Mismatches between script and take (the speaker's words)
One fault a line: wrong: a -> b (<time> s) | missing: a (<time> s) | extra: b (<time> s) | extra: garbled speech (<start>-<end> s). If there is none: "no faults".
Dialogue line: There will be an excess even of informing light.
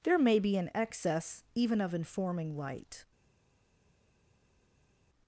wrong: will -> may (0.2 s)